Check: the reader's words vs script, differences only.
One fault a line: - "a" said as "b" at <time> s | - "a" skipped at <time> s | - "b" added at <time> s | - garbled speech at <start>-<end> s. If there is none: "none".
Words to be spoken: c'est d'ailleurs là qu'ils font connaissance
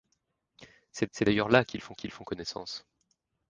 - "c'est" added at 1.1 s
- "qu'ils font" added at 1.9 s